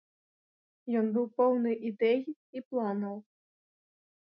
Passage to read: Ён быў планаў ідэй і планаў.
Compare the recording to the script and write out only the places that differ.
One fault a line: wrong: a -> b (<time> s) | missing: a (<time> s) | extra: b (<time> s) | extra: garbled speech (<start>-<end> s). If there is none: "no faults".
wrong: планаў -> поўны (1.4 s)